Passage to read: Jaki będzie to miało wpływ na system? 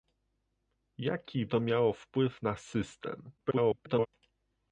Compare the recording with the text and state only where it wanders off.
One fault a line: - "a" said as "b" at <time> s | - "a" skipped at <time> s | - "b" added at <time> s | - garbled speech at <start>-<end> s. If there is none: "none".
- "będzie" skipped at 1.4 s
- garbled speech at 3.4-4.1 s